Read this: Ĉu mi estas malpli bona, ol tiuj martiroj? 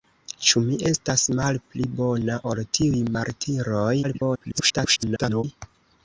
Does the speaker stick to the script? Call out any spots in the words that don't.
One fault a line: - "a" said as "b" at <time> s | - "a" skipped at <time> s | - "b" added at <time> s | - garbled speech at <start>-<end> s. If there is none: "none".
- garbled speech at 4.0-5.4 s